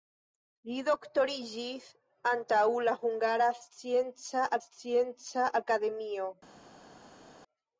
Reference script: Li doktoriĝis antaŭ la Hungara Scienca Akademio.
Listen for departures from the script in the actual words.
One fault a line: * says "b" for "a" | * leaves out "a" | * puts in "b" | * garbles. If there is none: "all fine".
* puts in "Scienca"